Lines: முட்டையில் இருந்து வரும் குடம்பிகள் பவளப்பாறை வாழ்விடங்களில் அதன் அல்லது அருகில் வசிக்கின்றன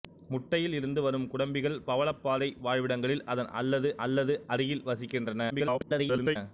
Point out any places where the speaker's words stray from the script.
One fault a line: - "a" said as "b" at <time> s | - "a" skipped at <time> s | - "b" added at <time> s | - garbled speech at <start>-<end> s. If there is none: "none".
- "அல்லது" added at 4.1 s
- garbled speech at 5.5-6.4 s